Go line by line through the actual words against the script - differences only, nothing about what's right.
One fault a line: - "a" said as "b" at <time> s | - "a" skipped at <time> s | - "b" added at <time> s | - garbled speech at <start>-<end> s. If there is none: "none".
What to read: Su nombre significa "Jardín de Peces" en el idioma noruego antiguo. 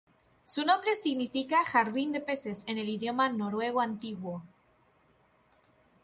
none